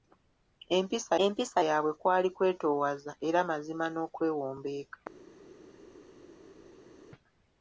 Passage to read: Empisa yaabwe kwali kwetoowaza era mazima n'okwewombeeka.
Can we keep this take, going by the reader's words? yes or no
no